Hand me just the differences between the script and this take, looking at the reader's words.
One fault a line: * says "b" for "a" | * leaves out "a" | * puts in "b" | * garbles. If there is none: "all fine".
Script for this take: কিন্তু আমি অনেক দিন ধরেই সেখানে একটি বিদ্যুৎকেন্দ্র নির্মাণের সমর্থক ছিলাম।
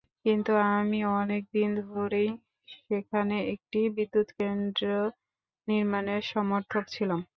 all fine